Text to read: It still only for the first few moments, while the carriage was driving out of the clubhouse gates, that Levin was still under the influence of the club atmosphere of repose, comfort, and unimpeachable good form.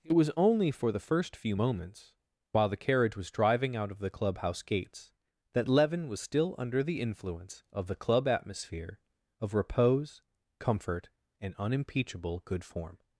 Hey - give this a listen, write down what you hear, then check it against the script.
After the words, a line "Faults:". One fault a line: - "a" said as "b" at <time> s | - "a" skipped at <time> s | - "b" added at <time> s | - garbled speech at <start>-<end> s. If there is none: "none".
It was only for the first few moments, while the carriage was driving out of the clubhouse gates, that Levin was still under the influence of the club atmosphere of repose, comfort, and unimpeachable good form.
Faults:
- "still" said as "was" at 0.1 s